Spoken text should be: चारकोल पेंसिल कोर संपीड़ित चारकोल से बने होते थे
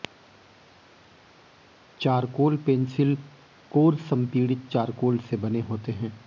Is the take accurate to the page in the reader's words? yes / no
no